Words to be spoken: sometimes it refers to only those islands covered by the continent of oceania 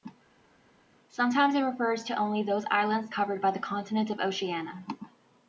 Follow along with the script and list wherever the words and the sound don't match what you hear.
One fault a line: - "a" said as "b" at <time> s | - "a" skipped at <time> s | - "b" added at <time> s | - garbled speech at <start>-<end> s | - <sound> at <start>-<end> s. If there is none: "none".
none